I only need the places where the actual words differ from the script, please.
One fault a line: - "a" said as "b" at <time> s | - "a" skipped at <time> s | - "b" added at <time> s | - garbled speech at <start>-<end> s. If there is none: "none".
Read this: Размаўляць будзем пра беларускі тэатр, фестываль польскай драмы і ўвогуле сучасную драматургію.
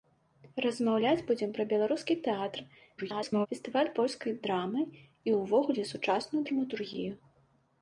- garbled speech at 3.0-3.5 s